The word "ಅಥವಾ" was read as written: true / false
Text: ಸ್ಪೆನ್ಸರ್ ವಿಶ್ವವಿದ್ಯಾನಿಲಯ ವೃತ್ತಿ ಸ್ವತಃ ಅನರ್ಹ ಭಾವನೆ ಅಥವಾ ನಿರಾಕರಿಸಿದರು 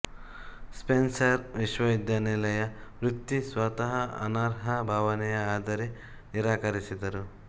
false